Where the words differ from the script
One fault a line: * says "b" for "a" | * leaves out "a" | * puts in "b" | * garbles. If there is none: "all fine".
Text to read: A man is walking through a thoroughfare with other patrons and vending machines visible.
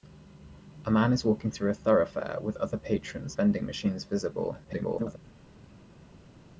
* leaves out "and"
* garbles